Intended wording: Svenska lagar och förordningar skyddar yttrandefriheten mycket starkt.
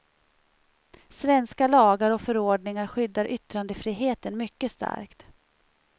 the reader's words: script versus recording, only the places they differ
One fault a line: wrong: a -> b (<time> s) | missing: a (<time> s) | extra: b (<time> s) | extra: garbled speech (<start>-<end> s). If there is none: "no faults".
no faults